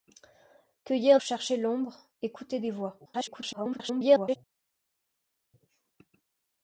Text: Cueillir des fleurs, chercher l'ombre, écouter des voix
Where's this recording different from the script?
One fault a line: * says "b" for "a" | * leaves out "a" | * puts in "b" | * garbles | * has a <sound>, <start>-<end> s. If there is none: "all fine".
* leaves out "des fleurs"
* garbles